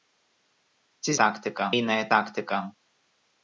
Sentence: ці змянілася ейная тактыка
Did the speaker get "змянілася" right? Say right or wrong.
wrong